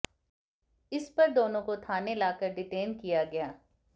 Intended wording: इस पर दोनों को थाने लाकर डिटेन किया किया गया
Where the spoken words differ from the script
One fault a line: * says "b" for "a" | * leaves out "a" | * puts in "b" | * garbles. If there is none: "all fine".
* leaves out "किया"